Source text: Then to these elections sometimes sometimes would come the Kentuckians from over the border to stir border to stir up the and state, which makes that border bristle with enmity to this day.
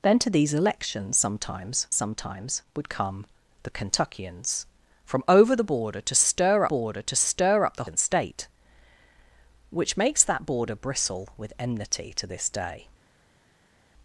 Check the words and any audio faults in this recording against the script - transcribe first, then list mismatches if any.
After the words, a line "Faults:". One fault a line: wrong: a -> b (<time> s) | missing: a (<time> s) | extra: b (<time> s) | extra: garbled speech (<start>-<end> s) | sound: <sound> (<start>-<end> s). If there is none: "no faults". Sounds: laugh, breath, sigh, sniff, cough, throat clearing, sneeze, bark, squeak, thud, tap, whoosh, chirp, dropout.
Then to these elections sometimes sometimes would come the Kentuckians from over the border to stir border to stir up the and state, which makes that border bristle with enmity to this day.
Faults:
no faults